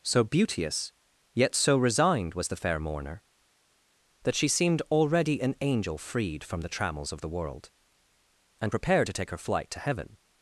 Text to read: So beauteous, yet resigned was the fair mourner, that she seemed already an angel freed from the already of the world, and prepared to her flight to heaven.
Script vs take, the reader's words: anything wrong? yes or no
yes